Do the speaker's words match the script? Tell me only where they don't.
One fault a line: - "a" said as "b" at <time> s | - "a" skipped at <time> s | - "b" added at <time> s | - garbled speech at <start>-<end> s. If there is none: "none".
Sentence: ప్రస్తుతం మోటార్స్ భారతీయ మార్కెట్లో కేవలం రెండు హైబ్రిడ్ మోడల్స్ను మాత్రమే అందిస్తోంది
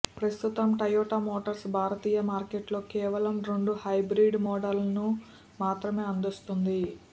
- "టయోటా" added at 0.8 s